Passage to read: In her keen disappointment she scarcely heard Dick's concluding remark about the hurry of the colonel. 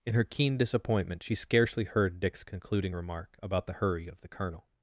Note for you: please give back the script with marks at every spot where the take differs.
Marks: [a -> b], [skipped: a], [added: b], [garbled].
In her keen disappointment she scarcely heard Dick's concluding remark about the hurry of the colonel.